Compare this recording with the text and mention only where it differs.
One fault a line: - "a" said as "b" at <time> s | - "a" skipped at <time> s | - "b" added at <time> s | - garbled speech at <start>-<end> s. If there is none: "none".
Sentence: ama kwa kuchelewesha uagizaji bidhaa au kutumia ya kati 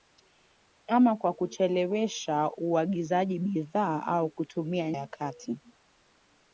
none